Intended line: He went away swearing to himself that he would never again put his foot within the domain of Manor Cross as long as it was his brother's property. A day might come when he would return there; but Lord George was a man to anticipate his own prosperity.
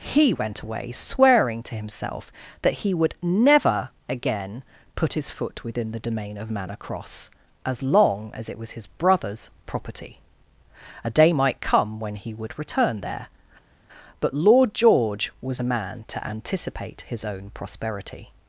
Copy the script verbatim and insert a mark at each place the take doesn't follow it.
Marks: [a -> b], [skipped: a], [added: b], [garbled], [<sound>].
He went away swearing to himself that he would never again put his foot within the domain of Manor Cross as long as it was his brother's property. A day might come when he would return there; but Lord George was a man to anticipate his own prosperity.